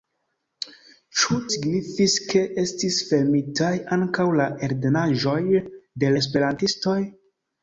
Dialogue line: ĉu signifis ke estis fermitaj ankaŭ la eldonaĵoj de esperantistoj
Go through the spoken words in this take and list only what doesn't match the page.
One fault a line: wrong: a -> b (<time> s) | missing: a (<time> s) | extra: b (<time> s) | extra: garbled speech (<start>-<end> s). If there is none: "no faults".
no faults